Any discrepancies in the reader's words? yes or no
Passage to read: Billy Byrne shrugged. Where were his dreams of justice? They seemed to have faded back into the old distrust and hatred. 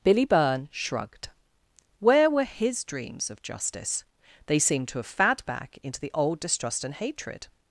yes